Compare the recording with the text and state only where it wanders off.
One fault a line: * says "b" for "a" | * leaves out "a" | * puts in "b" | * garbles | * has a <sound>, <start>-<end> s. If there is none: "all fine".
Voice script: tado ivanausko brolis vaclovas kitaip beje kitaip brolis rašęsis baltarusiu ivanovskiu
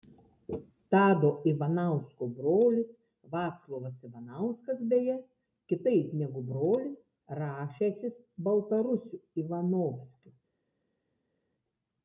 * says "ivanauskas" for "kitaip"
* puts in "negu"